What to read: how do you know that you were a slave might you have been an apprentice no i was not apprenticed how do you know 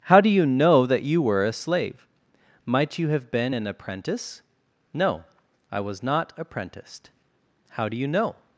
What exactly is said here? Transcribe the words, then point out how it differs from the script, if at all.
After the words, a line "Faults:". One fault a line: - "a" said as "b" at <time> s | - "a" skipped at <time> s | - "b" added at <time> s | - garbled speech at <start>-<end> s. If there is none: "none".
how do you know that you were a slave might you have been an apprentice no i was not apprenticed how do you know
Faults:
none